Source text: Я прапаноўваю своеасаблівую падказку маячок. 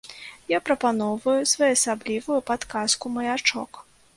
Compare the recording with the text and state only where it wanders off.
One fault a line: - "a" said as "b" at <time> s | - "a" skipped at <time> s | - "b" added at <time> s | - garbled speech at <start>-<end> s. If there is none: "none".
none